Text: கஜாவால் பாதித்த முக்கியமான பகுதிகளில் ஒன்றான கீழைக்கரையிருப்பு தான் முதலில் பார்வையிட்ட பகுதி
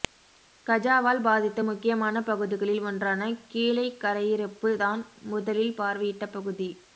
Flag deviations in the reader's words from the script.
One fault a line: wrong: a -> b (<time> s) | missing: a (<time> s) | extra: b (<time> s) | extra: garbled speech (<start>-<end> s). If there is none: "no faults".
no faults